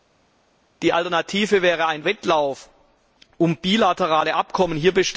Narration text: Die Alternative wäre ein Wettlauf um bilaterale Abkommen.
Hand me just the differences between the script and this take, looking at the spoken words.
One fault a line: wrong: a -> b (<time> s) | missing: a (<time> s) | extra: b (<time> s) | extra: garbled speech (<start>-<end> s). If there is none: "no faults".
no faults